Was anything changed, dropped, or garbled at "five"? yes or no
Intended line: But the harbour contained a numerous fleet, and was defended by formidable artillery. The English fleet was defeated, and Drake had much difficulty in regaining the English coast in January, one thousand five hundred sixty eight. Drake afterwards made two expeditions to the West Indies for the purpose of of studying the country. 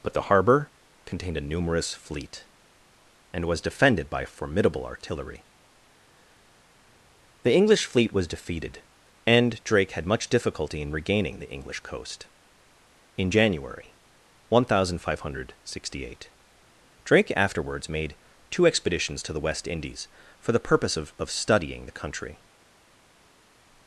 no